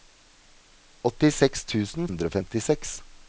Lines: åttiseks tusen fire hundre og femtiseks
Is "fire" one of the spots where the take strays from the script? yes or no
yes